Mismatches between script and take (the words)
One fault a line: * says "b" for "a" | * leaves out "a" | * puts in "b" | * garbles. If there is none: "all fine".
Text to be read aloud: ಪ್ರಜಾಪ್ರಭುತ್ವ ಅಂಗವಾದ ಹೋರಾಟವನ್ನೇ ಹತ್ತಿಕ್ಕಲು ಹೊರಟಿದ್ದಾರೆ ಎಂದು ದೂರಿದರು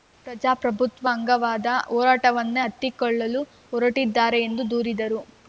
all fine